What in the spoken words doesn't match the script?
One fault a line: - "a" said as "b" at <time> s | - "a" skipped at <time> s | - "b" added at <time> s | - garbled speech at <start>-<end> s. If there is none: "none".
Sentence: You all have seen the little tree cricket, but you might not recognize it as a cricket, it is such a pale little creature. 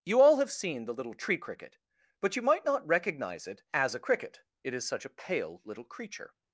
none